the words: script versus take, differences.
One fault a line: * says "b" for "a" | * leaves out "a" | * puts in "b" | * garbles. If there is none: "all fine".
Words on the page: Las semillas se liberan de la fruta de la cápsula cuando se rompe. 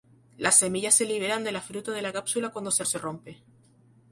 * puts in "se"